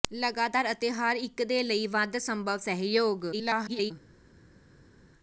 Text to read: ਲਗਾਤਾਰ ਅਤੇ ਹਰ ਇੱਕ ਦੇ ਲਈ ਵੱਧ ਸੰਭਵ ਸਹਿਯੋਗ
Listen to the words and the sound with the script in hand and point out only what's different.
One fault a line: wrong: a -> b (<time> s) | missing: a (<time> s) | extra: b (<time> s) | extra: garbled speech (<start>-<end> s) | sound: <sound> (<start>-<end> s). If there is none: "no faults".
extra: garbled speech (3.3-3.9 s)